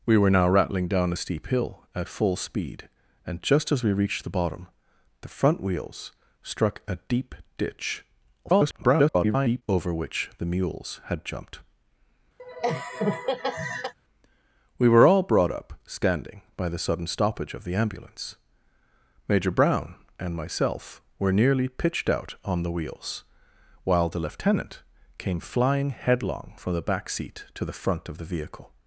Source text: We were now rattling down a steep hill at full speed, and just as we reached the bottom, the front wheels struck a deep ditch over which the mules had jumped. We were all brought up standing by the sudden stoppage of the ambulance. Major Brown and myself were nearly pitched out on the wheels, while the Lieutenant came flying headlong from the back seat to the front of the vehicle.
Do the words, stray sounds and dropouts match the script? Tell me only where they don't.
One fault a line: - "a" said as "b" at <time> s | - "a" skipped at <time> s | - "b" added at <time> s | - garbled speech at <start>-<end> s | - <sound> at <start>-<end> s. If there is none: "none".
- garbled speech at 8.4-9.6 s
- laugh at 12.4-13.9 s